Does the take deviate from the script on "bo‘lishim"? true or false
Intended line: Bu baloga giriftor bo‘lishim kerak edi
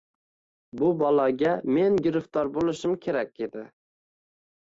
false